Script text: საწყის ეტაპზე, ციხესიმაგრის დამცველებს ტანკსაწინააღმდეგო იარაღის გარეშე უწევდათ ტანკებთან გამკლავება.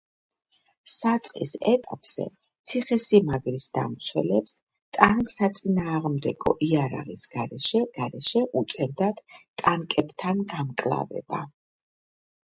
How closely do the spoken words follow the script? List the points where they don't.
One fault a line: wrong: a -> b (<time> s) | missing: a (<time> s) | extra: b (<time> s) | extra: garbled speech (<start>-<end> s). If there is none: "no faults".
extra: გარეშე (8.0 s)